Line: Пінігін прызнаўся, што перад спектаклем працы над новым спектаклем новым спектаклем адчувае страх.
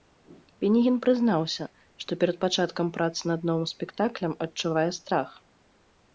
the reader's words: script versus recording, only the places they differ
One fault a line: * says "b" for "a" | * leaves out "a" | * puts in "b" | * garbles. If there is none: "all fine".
* says "пачаткам" for "спектаклем"
* leaves out "новым спектаклем"